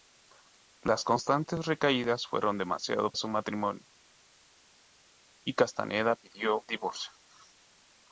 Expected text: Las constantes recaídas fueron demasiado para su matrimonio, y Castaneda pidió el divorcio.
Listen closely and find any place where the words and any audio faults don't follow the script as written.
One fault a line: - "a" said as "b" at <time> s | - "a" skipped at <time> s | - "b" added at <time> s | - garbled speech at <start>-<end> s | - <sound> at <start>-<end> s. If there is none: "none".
- "para" skipped at 3.1 s
- "el" skipped at 6.7 s